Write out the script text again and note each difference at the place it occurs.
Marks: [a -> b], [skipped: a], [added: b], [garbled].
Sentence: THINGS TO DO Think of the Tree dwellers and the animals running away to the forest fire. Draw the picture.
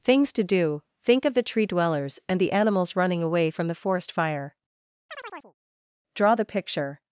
THINGS TO DO Think of the Tree dwellers and the animals running away [to -> from] the forest fire. Draw the picture.